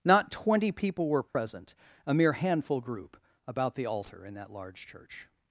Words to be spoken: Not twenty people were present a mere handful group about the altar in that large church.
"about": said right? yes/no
yes